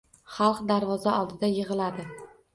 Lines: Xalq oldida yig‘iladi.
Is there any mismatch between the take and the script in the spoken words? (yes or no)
yes